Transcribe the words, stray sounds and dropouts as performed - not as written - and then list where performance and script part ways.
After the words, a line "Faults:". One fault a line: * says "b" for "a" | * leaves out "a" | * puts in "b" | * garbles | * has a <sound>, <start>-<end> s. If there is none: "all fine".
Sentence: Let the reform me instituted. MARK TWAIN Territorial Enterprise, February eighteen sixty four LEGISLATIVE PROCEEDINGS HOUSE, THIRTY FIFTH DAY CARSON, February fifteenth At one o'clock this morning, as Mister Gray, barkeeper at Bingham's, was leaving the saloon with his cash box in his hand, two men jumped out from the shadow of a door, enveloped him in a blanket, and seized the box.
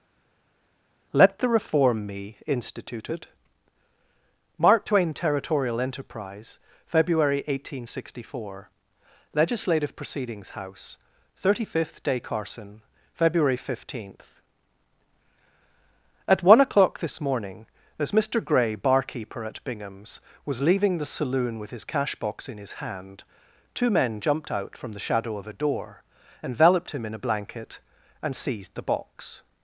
Let the reform me instituted. MARK TWAIN Territorial Enterprise, February eighteen sixty four LEGISLATIVE PROCEEDINGS HOUSE, THIRTY FIFTH DAY CARSON, February fifteenth At one o'clock this morning, as Mister Gray, barkeeper at Bingham's, was leaving the saloon with his cash box in his hand, two men jumped out from the shadow of a door, enveloped him in a blanket, and seized the box.
Faults:
all fine